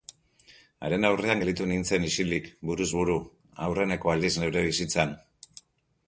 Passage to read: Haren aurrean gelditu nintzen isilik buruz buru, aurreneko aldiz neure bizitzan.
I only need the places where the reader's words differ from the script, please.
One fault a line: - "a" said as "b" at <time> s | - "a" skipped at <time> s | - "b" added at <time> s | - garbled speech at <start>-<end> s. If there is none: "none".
none